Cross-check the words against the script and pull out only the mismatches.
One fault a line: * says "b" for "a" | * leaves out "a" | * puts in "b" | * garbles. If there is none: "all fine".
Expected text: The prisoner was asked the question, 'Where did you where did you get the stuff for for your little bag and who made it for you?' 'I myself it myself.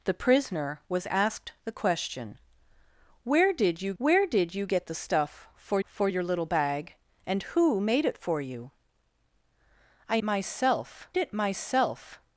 all fine